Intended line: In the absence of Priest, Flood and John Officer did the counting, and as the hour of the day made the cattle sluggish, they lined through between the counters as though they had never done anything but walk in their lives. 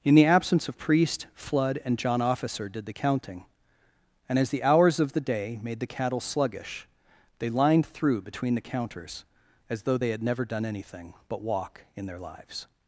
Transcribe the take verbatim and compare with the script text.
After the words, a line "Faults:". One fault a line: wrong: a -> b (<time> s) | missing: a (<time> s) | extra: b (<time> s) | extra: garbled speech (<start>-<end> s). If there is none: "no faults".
In the absence of Priest, Flood and John Officer did the counting, and as the hours of the day made the cattle sluggish, they lined through between the counters as though they had never done anything but walk in their lives.
Faults:
wrong: hour -> hours (4.6 s)